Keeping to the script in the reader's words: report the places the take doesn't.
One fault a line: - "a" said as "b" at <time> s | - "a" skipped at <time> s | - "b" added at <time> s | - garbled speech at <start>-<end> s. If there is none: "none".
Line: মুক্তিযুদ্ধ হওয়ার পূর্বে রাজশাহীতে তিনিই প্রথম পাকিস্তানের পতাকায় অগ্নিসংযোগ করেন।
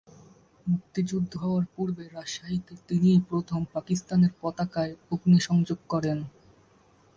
none